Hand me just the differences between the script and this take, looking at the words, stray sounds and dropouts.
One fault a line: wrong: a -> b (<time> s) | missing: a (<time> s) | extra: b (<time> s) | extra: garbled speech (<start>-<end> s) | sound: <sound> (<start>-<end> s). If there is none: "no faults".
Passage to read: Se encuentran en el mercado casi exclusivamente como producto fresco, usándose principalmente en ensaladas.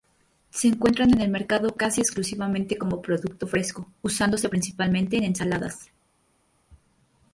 no faults